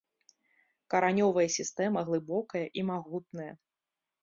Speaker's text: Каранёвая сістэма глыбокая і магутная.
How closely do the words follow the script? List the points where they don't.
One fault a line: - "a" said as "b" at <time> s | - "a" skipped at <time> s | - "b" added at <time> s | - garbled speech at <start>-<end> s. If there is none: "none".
none